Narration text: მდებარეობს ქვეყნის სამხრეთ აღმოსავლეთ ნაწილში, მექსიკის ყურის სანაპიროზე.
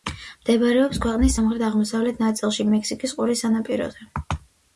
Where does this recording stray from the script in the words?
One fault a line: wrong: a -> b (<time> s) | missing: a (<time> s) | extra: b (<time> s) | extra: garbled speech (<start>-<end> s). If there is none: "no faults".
no faults